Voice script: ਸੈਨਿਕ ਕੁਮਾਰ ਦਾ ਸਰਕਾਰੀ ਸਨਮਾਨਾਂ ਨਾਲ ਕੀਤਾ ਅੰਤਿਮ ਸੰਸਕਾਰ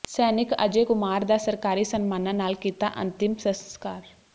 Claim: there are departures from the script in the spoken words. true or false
true